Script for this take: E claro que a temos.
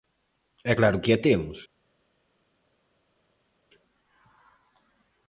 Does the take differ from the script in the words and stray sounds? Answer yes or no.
no